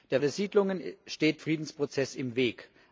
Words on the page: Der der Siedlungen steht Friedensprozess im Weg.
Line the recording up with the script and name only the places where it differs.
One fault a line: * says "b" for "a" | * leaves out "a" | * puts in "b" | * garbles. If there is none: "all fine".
all fine